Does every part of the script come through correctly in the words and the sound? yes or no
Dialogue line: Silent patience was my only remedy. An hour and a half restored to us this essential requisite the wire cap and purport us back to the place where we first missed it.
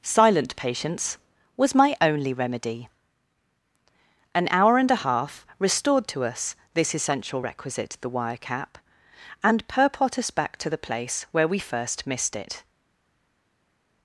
yes